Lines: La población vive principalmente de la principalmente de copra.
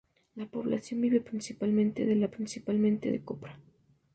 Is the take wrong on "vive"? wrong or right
right